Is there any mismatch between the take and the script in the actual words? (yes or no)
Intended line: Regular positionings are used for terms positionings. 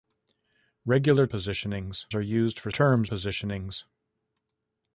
no